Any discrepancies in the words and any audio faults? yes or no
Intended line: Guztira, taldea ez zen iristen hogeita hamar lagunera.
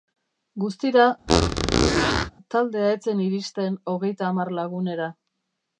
yes